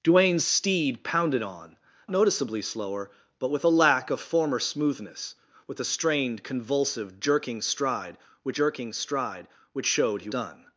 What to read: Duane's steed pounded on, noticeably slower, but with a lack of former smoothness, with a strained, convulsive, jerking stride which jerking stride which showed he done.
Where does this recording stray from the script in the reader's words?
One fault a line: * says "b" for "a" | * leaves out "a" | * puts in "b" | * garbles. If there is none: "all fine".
all fine